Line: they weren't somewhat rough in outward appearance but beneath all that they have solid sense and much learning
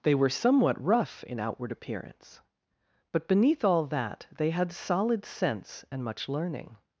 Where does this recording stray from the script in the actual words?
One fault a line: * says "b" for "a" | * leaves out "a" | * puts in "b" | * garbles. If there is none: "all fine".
* says "were" for "weren't"
* says "had" for "have"